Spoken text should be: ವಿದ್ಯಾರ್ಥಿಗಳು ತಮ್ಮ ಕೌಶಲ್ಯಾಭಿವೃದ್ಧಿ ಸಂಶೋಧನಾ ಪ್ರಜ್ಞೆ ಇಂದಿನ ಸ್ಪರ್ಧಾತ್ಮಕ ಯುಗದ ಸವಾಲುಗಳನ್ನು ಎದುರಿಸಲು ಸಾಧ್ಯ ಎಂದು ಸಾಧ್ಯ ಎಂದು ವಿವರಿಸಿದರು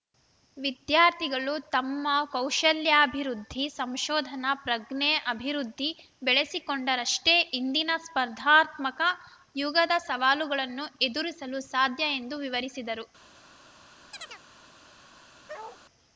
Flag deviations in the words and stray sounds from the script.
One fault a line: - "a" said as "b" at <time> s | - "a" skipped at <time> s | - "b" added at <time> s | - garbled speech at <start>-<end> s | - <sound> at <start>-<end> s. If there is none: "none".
- "ಅಭಿವೃದ್ಧಿ ಬೆಳೆಸಿಕೊಂಡರಷ್ಟೇ" added at 5.3 s
- "ಸಾಧ್ಯ ಎಂದು" skipped at 12.4 s
- chirp at 14.1-14.4 s
- bark at 15.5-15.8 s